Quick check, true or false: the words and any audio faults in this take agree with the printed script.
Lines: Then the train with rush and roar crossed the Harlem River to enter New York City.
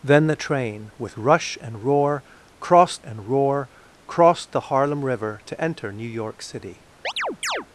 false